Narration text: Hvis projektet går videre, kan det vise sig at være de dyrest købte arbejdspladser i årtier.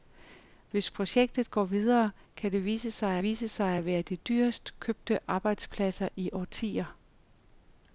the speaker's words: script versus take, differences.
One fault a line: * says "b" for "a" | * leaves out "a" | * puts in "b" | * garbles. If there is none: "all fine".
* puts in "vise sig"